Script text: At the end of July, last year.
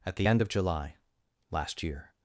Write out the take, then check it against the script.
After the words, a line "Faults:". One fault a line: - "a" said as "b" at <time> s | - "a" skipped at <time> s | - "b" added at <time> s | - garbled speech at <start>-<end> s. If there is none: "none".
At the end of July, last year.
Faults:
none